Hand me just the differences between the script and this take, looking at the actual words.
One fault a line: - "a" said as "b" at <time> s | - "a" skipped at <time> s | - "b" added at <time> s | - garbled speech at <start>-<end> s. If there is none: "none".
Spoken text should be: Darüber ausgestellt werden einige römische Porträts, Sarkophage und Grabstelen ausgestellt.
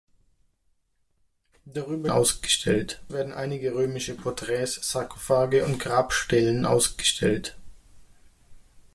none